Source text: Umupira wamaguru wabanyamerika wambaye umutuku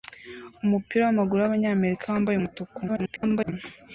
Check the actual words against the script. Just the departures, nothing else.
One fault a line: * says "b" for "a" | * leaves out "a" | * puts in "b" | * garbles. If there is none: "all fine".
* garbles